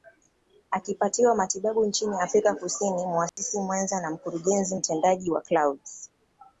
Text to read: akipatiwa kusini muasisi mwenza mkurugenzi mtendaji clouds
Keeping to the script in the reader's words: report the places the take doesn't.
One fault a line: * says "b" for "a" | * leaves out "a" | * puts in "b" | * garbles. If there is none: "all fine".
* puts in "matibabu nchini afrika"
* puts in "na"
* puts in "wa"